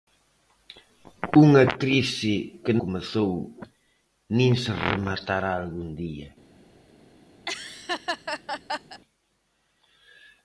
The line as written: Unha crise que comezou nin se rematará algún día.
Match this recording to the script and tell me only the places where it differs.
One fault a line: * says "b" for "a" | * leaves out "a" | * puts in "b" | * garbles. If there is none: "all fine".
all fine